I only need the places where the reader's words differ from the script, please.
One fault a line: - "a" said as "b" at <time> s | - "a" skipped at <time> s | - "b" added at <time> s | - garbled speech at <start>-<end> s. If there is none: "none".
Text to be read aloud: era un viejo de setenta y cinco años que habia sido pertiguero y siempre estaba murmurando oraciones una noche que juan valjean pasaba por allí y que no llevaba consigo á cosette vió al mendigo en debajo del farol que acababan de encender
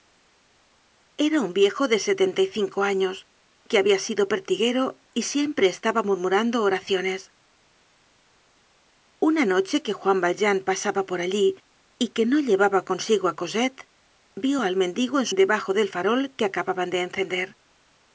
none